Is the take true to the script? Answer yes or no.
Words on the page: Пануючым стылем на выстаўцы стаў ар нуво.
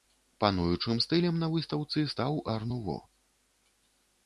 yes